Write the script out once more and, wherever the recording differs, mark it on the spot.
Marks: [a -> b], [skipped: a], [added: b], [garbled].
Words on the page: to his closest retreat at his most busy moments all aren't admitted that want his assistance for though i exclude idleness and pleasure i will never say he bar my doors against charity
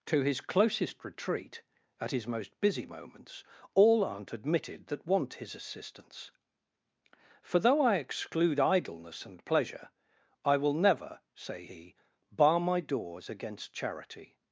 to his closest retreat at his most busy moments all aren't admitted that want his assistance for though i exclude idleness and pleasure i will never say he bar my doors against charity